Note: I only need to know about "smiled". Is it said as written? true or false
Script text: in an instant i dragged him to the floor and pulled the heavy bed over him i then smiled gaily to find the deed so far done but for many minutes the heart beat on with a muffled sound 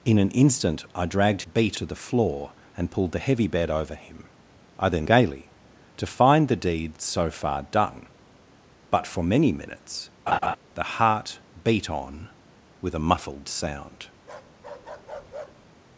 false